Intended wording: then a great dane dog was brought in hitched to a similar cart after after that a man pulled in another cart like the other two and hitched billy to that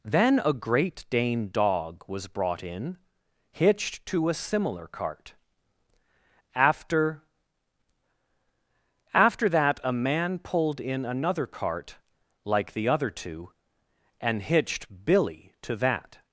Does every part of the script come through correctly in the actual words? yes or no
yes